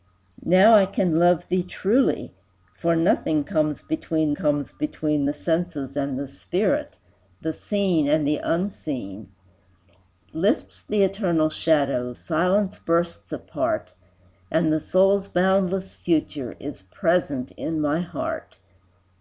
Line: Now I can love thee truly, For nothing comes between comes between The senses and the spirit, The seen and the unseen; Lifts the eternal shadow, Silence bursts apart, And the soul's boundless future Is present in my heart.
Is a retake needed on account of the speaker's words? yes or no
no